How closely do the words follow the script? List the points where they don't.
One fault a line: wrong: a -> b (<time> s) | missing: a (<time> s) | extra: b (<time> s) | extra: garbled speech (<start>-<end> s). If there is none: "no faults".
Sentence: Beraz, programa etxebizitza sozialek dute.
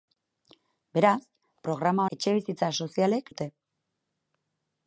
no faults